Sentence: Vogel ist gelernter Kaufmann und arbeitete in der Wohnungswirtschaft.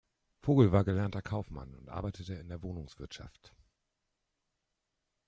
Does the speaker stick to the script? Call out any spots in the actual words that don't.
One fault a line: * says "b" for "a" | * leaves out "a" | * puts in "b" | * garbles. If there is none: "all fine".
* says "war" for "ist"